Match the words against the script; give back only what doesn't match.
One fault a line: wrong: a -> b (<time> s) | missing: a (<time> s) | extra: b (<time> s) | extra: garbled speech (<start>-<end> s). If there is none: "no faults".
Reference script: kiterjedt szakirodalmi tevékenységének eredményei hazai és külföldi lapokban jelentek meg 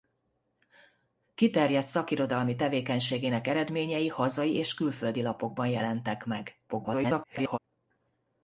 extra: garbled speech (6.7-7.6 s)